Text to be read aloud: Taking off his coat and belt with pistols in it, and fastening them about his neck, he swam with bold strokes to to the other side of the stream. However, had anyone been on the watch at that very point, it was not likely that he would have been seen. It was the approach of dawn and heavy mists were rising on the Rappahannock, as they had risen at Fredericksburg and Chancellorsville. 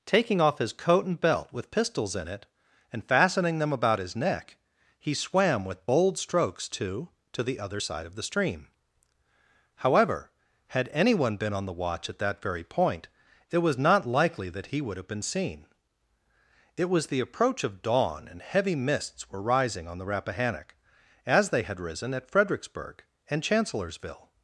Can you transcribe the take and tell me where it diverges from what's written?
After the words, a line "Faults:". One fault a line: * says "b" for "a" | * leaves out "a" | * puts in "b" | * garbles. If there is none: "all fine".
Taking off his coat and belt with pistols in it, and fastening them about his neck, he swam with bold strokes to to the other side of the stream. However, had anyone been on the watch at that very point, it was not likely that he would have been seen. It was the approach of dawn and heavy mists were rising on the Rappahannock, as they had risen at Fredericksburg and Chancellorsville.
Faults:
all fine